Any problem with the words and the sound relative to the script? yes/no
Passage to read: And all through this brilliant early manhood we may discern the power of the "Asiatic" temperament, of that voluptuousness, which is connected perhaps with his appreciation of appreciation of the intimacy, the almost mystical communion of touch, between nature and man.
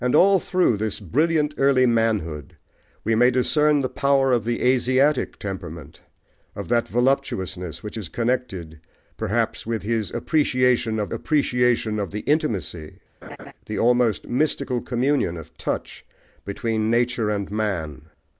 yes